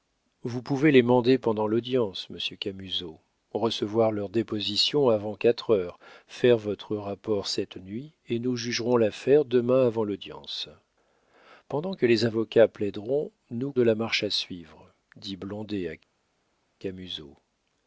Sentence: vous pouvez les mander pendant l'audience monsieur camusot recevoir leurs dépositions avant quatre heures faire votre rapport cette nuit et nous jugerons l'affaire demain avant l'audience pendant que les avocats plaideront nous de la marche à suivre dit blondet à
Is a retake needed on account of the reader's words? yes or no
no